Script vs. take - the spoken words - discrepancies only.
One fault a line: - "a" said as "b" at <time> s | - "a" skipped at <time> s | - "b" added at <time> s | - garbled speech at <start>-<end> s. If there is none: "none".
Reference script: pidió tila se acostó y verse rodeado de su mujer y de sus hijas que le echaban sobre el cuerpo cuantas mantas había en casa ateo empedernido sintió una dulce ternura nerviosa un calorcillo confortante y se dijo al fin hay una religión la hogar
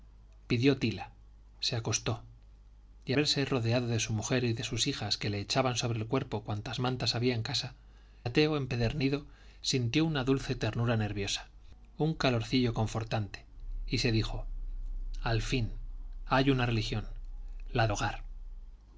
none